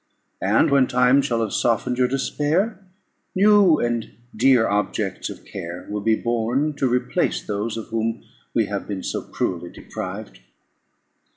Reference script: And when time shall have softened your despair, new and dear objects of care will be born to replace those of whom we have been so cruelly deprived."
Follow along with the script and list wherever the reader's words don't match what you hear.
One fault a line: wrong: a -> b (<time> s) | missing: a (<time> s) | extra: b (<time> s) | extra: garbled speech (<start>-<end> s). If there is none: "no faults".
no faults